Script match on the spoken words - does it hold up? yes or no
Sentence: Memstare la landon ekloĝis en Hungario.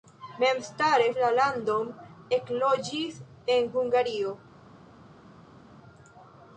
yes